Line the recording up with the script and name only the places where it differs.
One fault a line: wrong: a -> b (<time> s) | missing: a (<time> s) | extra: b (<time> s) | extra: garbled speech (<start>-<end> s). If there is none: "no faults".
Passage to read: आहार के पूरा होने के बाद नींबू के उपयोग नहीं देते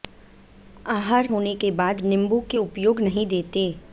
missing: के पूरा (1.3 s)